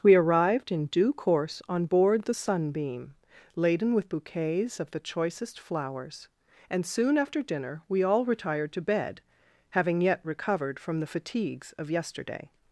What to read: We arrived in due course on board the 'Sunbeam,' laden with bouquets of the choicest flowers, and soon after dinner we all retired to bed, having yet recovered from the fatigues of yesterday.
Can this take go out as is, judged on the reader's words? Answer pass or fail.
pass